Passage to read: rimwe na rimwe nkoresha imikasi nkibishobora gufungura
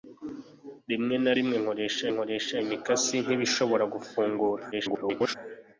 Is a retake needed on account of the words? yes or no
yes